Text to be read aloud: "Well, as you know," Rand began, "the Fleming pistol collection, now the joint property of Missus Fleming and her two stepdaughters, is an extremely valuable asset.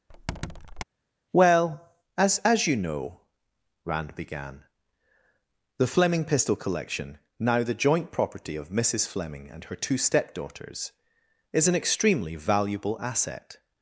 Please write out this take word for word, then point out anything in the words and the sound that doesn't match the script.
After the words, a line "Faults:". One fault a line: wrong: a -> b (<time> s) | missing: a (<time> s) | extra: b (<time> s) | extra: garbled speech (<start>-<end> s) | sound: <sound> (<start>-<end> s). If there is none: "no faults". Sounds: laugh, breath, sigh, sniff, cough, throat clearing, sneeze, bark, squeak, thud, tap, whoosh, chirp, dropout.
"Well, as as you know," Rand began, "the Fleming pistol collection, now the joint property of Missus Fleming and her two stepdaughters, is an extremely valuable asset.
Faults:
sound: squeak (0.1-0.8 s)
extra: as (2.4 s)